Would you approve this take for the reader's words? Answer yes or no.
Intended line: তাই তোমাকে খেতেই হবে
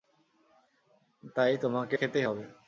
yes